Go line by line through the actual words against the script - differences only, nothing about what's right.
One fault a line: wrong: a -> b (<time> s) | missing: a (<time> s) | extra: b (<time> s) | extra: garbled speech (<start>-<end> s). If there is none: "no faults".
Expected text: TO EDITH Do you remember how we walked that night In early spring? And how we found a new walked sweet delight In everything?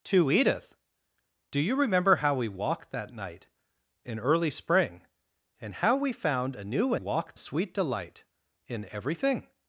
no faults